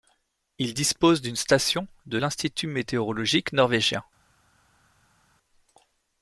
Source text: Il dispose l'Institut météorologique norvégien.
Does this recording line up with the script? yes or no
no